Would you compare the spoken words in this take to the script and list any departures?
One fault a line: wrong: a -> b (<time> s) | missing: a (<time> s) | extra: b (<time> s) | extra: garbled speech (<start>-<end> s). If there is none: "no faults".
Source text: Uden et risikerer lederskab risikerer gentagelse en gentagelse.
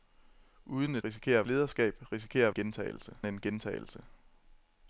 no faults